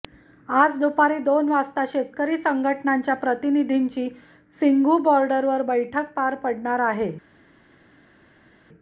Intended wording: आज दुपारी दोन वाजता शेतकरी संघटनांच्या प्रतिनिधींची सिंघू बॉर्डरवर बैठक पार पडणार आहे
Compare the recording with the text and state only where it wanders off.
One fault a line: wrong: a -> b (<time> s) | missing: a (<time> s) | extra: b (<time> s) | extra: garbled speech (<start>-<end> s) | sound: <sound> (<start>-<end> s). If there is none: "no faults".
no faults